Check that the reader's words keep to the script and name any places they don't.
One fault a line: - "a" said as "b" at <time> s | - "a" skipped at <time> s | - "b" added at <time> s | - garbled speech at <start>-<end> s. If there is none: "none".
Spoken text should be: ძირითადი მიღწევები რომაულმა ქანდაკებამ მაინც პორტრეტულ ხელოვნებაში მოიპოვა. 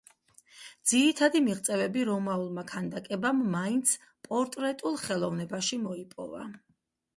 none